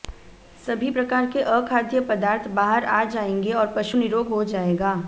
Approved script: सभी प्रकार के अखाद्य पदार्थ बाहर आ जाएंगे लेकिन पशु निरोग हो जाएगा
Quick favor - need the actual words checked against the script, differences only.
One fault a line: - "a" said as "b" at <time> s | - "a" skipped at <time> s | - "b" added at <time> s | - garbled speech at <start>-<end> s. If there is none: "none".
- "लेकिन" said as "और" at 3.5 s